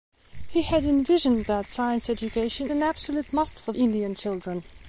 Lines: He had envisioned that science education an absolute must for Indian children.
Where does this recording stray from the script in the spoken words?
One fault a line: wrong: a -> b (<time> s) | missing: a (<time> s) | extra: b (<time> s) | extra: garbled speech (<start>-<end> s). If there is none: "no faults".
no faults